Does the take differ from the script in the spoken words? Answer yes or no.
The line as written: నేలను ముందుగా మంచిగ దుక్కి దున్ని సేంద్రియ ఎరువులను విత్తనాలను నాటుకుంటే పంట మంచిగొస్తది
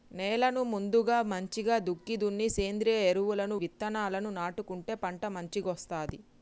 no